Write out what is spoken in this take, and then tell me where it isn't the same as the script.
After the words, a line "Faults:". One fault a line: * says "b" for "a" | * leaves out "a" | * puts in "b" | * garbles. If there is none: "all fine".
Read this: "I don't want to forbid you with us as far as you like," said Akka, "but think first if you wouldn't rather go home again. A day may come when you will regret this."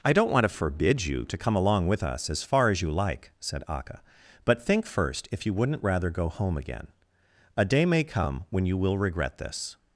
"I don't want to forbid you to come along with us as far as you like," said Akka, "but think first if you wouldn't rather go home again. A day may come when you will regret this."
Faults:
* puts in "to come along"